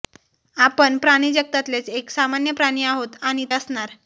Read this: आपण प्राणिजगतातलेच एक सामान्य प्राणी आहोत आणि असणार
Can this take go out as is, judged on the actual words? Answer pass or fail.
pass